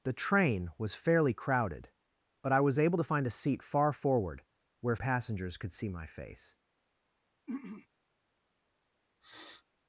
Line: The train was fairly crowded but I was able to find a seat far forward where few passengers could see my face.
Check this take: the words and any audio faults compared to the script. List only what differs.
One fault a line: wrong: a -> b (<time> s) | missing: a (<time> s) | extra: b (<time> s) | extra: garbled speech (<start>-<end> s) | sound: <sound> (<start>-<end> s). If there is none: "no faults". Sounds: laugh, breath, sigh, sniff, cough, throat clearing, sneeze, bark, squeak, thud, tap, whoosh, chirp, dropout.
missing: few (5.0 s)
sound: throat clearing (7.5-7.9 s)
sound: sniff (9.2-9.6 s)